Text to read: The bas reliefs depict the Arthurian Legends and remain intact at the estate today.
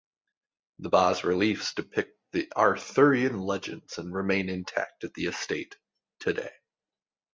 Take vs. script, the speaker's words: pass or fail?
pass